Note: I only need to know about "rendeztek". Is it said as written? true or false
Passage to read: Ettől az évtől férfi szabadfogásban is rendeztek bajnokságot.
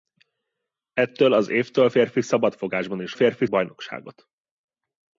false